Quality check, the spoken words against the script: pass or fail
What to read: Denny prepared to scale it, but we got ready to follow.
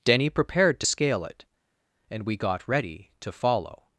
fail